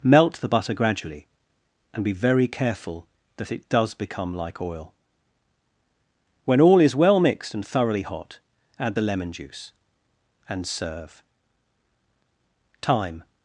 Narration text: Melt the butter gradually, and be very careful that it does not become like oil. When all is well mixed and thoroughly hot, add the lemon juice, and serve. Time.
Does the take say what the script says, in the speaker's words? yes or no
no